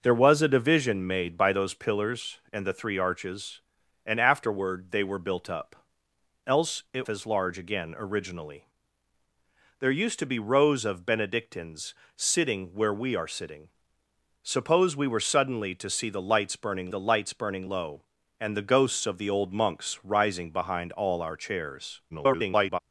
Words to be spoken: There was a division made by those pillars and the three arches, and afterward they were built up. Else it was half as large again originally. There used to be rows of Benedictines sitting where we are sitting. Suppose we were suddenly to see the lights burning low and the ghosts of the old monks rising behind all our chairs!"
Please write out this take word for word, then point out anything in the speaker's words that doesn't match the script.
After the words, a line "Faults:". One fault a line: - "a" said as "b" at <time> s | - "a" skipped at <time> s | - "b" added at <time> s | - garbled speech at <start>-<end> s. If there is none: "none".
There was a division made by those pillars and the three arches, and afterward they were built up. Else it as large again originally. There used to be rows of Benedictines sitting where we are sitting. Suppose we were suddenly to see the lights burning the lights burning low and the ghosts of the old monks rising behind all our chairs!" [garbled]
Faults:
- "was half" skipped at 7.1 s
- "the lights burning" added at 16.9 s
- garbled speech at 22.1-22.8 s